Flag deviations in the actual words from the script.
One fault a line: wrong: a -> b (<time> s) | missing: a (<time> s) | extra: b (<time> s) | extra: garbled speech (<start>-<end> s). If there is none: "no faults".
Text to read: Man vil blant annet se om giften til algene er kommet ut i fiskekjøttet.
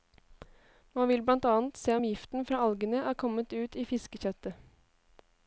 wrong: til -> fra (2.5 s)